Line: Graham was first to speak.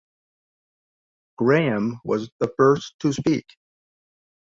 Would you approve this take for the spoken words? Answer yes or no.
no